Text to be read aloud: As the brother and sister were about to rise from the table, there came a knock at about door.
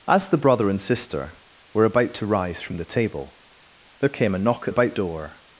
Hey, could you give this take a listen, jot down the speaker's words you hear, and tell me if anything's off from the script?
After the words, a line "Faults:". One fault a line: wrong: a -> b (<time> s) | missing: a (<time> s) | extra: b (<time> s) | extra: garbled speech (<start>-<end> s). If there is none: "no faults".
As the brother and sister were about to rise from the table, there came a knock at about door.
Faults:
no faults